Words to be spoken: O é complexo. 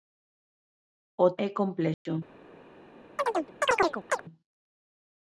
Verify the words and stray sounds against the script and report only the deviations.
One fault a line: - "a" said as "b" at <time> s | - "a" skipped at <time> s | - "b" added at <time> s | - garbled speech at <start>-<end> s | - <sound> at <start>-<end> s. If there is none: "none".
- dropout at 1.9-2.1 s
- chirp at 3.2-4.2 s